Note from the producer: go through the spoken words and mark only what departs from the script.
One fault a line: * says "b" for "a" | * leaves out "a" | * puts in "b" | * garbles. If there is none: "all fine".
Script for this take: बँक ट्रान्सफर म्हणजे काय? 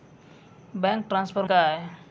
* leaves out "म्हणजे"